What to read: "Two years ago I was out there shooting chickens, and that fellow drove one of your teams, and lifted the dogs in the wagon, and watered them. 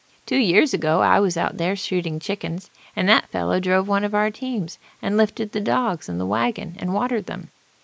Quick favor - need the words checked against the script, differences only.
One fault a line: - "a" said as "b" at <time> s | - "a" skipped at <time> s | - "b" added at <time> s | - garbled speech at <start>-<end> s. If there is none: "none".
- "your" said as "our" at 4.2 s